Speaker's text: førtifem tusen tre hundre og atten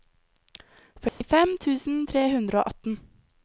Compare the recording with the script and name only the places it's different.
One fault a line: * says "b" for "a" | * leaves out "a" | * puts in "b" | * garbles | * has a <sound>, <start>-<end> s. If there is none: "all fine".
* has a dropout, 1.1-1.2 s